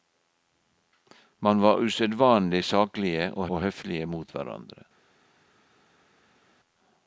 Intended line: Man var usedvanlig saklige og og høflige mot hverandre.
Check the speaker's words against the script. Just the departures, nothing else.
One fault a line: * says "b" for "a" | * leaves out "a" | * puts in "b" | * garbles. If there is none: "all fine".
all fine